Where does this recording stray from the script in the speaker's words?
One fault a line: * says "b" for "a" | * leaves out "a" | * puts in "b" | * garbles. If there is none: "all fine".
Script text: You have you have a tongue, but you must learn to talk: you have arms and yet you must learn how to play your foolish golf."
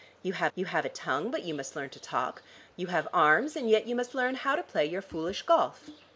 all fine